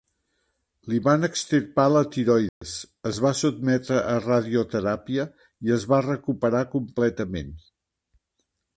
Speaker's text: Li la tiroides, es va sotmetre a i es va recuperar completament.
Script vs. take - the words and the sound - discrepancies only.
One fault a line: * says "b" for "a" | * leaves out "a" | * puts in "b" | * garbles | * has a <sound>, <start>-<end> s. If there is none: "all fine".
* puts in "van extirpar"
* has a dropout, 2.5-2.6 s
* puts in "radioteràpia"